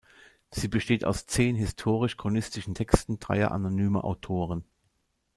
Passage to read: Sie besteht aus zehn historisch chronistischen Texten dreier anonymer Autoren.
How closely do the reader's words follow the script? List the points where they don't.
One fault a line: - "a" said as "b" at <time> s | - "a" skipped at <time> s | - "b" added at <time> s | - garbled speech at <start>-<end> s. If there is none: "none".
none